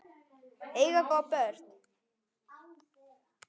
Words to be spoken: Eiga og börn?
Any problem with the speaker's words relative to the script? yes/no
no